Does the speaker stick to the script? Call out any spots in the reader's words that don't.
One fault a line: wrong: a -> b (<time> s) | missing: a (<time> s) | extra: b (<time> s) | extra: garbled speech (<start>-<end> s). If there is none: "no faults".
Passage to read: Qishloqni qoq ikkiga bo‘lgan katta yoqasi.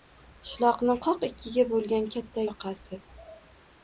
no faults